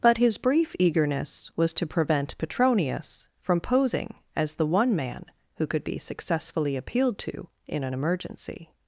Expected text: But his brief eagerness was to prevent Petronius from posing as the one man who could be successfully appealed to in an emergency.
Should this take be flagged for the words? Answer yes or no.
no